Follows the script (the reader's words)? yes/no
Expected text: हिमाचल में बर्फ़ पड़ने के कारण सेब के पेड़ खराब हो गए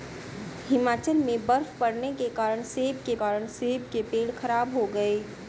no